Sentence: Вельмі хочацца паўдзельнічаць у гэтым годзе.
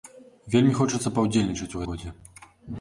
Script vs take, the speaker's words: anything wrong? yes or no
yes